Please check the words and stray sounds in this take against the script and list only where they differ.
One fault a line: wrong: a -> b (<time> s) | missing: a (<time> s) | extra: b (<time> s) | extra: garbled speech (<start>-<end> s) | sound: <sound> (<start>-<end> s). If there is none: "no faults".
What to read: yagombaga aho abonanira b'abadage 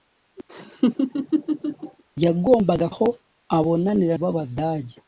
sound: laugh (0.5-2.0 s)